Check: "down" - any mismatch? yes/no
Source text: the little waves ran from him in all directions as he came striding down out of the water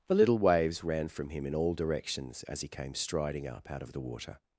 yes